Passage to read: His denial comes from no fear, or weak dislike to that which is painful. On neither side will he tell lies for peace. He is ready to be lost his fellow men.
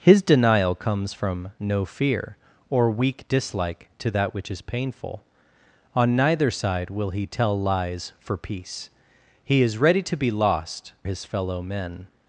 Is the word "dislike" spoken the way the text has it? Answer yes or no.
yes